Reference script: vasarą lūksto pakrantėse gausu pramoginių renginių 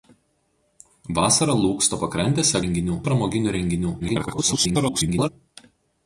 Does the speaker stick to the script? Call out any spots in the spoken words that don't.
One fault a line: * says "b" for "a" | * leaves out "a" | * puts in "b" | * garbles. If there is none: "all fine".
* says "renginių" for "gausu"
* garbles